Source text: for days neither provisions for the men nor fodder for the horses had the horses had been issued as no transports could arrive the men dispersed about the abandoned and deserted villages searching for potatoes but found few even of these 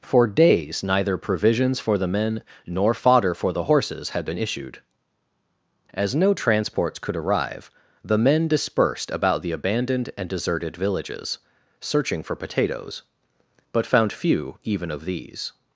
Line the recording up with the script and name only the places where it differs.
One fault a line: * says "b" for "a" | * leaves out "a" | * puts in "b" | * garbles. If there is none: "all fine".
* leaves out "the horses had"